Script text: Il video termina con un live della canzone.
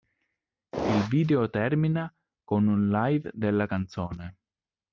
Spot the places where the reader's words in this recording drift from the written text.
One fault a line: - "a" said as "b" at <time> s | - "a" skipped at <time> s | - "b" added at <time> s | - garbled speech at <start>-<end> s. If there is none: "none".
none